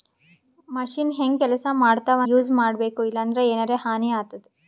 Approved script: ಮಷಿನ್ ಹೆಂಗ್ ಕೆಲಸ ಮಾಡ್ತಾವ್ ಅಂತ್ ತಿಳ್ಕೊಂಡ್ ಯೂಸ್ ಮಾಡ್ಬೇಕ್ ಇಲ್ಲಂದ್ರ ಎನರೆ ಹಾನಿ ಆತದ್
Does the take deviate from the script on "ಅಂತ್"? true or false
true